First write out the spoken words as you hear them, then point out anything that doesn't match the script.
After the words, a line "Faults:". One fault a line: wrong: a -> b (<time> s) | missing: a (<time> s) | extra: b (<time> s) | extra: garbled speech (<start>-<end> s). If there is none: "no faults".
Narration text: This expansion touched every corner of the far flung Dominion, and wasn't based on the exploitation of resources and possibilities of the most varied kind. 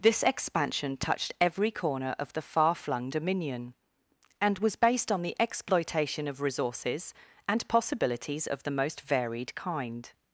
This expansion touched every corner of the far flung Dominion, and was based on the exploitation of resources and possibilities of the most varied kind.
Faults:
wrong: wasn't -> was (4.6 s)